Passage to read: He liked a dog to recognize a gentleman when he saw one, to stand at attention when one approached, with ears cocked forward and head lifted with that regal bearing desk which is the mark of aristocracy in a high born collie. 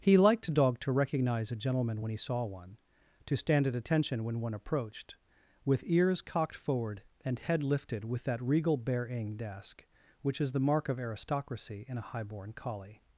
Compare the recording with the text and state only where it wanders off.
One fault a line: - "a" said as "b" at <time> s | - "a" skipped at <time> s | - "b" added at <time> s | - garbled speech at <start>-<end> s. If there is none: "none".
none